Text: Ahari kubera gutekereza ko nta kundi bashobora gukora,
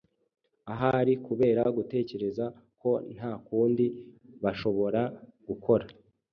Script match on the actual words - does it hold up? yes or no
yes